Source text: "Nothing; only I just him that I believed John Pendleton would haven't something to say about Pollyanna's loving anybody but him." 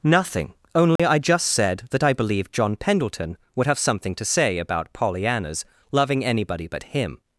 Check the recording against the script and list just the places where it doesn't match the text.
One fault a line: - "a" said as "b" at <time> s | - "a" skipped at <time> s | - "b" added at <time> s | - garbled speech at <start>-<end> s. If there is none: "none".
- "him" said as "said" at 1.5 s
- "haven't" said as "have" at 3.7 s